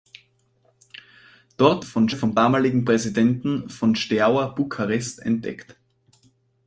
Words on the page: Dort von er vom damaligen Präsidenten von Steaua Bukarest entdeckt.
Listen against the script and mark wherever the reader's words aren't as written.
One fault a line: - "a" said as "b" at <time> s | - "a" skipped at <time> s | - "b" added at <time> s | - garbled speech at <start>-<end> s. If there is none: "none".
none